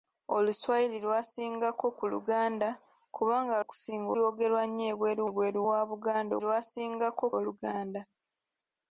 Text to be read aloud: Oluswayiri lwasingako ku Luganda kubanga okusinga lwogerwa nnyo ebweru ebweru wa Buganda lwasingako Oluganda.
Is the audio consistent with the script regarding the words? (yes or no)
yes